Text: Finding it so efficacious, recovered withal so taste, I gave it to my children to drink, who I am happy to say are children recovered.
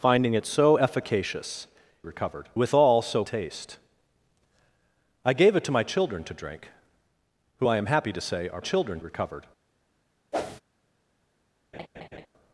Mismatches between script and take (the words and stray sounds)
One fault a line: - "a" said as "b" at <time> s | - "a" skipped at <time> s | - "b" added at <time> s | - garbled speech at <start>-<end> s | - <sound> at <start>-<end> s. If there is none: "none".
- whoosh at 10.3-10.6 s
- laugh at 11.7-12.3 s